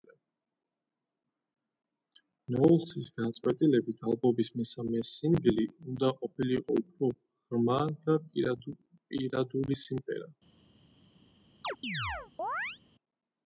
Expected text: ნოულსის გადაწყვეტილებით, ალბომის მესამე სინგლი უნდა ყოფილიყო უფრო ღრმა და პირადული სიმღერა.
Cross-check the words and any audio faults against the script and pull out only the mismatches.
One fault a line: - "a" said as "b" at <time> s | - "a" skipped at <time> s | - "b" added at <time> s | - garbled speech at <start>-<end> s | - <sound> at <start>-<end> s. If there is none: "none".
- chirp at 11.6-12.8 s